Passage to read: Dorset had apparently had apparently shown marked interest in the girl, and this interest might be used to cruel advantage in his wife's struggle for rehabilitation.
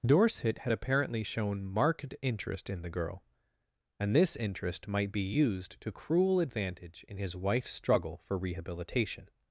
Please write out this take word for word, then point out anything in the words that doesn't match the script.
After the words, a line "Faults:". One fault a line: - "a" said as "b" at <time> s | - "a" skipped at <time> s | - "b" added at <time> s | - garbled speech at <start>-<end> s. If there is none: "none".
Dorset had apparently shown marked interest in the girl, and this interest might be used to cruel advantage in his wife's struggle for rehabilitation.
Faults:
- "had apparently" skipped at 1.2 s